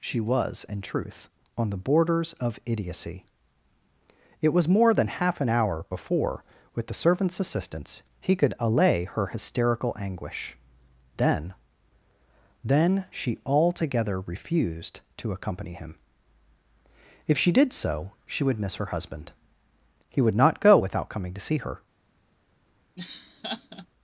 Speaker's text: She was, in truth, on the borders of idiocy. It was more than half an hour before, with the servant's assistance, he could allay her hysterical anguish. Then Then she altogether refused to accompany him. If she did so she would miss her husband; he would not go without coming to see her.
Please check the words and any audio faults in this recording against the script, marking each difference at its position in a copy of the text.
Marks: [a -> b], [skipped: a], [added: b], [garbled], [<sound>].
She was, in truth, on the borders of idiocy. It was more than half an hour before, with the servant's assistance, he could allay her hysterical anguish. Then Then she altogether refused to accompany him. If she did so she would miss her husband; he would not go without coming to see her. [laugh]